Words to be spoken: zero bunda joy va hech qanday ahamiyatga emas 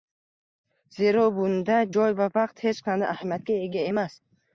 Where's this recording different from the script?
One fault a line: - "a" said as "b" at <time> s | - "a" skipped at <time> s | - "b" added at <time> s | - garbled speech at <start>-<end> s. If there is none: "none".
- "vaqt" added at 2.3 s
- "ega" added at 3.7 s